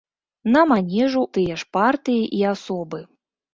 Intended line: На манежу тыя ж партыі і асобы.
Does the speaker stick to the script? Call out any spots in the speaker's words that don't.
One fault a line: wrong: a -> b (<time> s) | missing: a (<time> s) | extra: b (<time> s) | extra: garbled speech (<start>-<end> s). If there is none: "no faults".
no faults